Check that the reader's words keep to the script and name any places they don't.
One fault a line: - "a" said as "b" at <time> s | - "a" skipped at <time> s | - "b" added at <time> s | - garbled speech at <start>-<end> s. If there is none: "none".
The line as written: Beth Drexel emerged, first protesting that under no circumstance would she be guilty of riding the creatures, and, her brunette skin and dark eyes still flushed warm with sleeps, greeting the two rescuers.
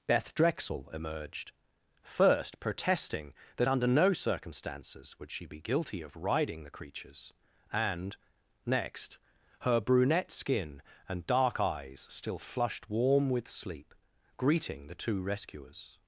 - "circumstance" said as "circumstances" at 4.1 s
- "next" added at 8.6 s
- "sleeps" said as "sleep" at 13.5 s